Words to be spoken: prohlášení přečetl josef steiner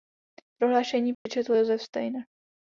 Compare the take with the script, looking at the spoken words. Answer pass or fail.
pass